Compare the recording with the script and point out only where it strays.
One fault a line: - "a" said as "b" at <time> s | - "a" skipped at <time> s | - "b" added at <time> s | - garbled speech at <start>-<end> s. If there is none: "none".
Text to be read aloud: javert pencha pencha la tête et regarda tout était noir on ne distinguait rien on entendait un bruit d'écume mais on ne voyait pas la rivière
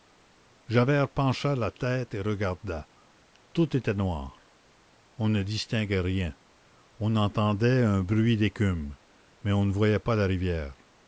- "pencha" skipped at 1.6 s